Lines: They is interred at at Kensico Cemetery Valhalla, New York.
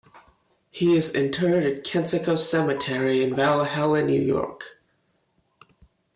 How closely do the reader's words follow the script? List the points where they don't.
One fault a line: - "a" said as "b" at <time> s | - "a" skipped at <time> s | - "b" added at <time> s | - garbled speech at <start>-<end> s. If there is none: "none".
- "They" said as "He" at 0.7 s
- "at" skipped at 1.8 s
- "in" added at 3.2 s